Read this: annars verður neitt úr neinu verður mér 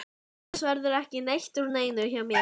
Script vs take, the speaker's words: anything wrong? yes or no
yes